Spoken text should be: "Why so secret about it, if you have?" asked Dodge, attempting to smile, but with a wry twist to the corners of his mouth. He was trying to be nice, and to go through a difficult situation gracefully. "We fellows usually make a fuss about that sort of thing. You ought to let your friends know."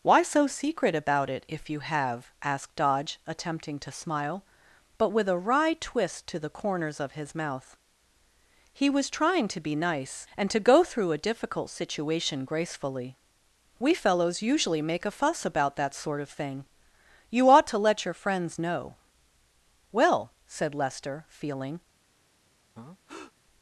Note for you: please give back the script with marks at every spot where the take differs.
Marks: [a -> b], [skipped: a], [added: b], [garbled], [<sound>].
"Why so secret about it, if you have?" asked Dodge, attempting to smile, but with a wry twist to the corners of his mouth. He was trying to be nice, and to go through a difficult situation gracefully. "We fellows usually make a fuss about that sort of thing. You ought to let your friends know." [added: Well said Lester feeling] [breath]